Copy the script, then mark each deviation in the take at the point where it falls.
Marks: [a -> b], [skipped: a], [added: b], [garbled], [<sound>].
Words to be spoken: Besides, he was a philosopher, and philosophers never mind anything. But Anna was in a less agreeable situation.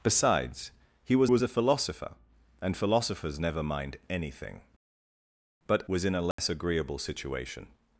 Besides, he was [added: was] a philosopher, and philosophers never mind anything. But [skipped: Anna] was in a less [dropout] agreeable situation.